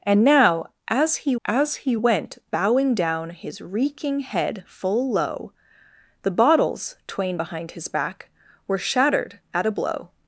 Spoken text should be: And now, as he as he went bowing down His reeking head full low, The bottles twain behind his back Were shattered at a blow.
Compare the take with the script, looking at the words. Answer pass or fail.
pass